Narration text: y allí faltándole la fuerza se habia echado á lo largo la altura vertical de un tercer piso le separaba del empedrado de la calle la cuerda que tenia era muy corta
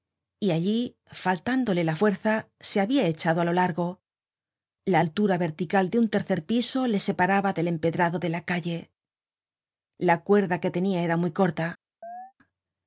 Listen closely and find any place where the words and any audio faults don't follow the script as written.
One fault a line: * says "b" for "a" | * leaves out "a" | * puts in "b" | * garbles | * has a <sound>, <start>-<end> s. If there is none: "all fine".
* has a chirp, 12.0-12.3 s